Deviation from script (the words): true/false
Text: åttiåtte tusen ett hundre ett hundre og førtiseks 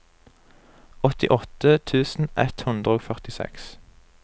true